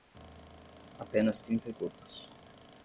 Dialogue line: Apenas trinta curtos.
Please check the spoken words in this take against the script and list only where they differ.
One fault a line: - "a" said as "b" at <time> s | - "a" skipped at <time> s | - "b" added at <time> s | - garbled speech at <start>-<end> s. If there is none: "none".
none